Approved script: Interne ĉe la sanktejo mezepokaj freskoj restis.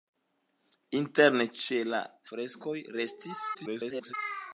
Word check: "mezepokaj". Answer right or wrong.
wrong